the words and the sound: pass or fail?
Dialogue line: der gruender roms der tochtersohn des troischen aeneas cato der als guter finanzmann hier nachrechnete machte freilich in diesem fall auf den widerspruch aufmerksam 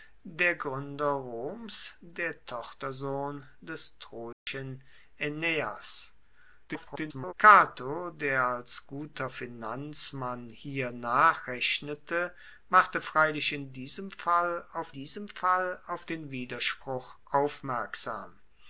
fail